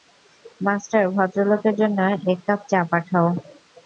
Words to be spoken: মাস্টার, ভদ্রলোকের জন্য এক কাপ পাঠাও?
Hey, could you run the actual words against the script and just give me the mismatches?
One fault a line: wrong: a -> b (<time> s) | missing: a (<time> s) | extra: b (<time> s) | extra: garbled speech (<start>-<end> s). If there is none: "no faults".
extra: চা (2.7 s)